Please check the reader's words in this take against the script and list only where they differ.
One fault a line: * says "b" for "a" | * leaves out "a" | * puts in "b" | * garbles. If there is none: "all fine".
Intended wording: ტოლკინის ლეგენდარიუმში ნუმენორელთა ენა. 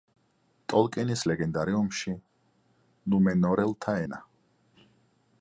all fine